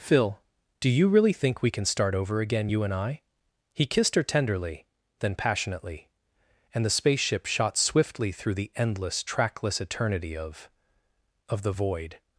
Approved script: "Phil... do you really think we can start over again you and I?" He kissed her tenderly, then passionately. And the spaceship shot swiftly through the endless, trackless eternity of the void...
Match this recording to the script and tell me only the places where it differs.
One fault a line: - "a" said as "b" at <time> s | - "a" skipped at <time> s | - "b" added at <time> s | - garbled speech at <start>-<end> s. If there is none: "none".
- "of" added at 11.5 s